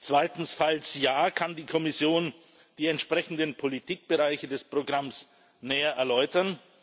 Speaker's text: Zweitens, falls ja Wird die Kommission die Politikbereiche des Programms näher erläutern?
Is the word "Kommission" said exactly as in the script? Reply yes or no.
yes